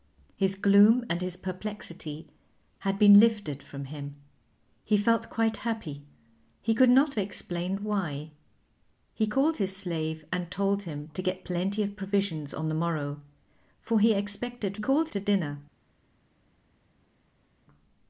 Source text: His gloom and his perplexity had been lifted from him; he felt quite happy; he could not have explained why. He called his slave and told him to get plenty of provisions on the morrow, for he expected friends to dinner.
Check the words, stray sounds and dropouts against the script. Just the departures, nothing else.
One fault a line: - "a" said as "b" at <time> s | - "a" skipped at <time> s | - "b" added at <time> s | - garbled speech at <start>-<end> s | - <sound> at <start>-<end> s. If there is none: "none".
- "have" skipped at 7.1 s
- "friends" said as "called" at 14.8 s